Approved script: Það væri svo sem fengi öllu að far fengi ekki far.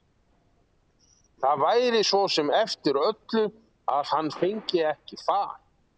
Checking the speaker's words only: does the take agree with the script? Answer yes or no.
no